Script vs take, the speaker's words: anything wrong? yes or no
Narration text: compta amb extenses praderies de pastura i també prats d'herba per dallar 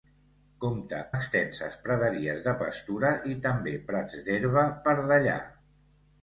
yes